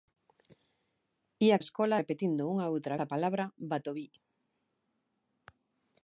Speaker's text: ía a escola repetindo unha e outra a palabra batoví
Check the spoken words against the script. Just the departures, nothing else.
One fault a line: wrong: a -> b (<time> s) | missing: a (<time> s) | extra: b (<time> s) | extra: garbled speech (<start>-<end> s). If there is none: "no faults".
no faults